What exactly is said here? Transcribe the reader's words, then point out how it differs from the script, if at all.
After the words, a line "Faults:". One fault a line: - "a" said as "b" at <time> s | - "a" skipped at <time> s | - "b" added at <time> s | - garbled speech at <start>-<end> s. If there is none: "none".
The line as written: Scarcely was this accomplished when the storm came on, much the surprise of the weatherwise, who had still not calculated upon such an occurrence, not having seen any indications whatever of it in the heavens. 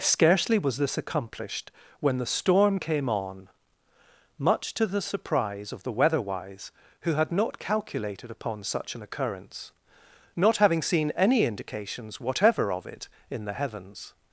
Scarcely was this accomplished when the storm came on, much to the surprise of the weatherwise, who had not calculated upon such an occurrence, not having seen any indications whatever of it in the heavens.
Faults:
- "to" added at 4.7 s
- "still" skipped at 7.3 s